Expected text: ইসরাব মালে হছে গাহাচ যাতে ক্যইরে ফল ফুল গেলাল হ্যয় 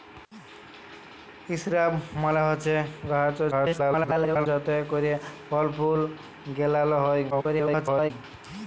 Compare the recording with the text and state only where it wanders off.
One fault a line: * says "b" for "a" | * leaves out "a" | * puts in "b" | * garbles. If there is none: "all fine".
* garbles
* garbles